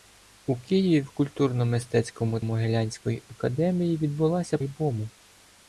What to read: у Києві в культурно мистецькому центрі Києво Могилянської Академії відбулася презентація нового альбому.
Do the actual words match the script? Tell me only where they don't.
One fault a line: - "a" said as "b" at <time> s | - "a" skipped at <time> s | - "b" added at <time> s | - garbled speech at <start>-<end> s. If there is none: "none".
- "центрі Києво" skipped at 2.4 s
- "презентація нового" skipped at 4.6 s